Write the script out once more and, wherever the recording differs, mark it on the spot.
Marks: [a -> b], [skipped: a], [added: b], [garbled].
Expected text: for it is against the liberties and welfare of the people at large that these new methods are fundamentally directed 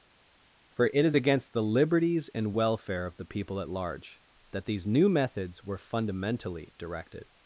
for it is against the liberties and welfare of the people at large that these new methods [are -> were] fundamentally directed